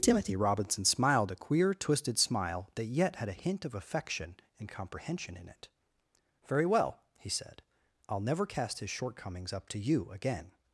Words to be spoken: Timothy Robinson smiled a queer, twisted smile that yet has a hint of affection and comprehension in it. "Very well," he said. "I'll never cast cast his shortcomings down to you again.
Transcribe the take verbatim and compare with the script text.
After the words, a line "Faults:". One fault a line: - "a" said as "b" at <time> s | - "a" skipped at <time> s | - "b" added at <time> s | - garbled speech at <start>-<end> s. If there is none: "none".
Timothy Robinson smiled a queer, twisted smile that yet had a hint of affection and comprehension in it. "Very well," he said. "I'll never cast his shortcomings up to you again.
Faults:
- "has" said as "had" at 3.2 s
- "cast" skipped at 8.8 s
- "down" said as "up" at 9.5 s